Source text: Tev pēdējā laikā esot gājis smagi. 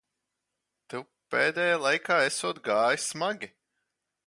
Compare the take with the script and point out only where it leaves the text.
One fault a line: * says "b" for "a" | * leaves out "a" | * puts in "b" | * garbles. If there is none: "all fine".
all fine